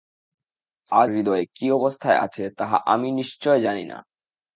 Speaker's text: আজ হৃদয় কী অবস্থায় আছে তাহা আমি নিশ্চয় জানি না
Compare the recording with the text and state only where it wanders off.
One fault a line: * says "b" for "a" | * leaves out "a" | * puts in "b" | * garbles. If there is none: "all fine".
all fine